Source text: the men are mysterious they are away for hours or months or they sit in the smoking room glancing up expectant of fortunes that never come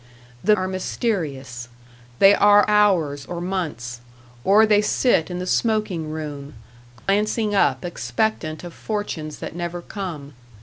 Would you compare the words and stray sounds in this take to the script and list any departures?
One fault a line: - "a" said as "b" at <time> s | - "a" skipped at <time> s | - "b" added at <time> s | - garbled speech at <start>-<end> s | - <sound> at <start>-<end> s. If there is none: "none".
- "men" skipped at 0.6 s
- "away for" skipped at 2.7 s
- dropout at 7.0-7.1 s